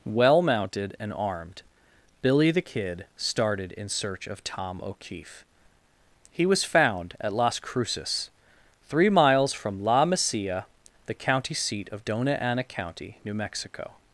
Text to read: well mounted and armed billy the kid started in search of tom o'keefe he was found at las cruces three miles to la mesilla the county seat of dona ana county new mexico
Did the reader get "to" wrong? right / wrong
wrong